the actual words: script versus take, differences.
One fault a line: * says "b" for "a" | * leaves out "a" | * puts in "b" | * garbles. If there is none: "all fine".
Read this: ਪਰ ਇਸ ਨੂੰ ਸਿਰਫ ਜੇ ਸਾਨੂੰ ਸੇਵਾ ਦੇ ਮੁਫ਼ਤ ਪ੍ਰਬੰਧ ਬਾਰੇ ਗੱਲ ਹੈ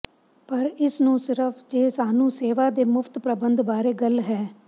all fine